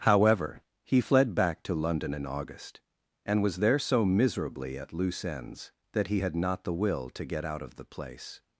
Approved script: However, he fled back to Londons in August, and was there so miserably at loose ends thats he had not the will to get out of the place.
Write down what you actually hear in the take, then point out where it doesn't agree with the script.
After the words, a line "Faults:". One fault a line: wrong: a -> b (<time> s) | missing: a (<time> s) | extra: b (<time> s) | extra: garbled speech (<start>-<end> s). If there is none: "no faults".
However, he fled back to London in August, and was there so miserably at loose ends that he had not the will to get out of the place.
Faults:
wrong: Londons -> London (1.7 s)
wrong: thats -> that (5.9 s)